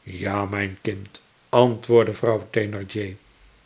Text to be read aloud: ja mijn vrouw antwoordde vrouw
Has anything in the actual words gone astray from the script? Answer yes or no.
yes